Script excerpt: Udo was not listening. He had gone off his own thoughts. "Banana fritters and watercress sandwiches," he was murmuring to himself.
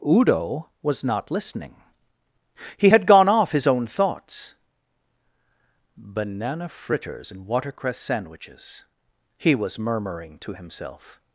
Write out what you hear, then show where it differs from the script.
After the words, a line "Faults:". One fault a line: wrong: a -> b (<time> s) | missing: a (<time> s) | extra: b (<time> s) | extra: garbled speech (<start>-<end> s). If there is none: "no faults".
Udo was not listening. He had gone off his own thoughts. "Banana fritters and watercress sandwiches," he was murmuring to himself.
Faults:
no faults